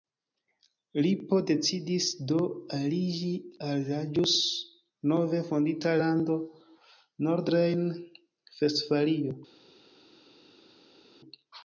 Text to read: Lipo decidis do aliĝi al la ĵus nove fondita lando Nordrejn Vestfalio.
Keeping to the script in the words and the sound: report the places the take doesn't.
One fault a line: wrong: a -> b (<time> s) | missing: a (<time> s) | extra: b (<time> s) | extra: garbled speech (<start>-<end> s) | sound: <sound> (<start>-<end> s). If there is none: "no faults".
no faults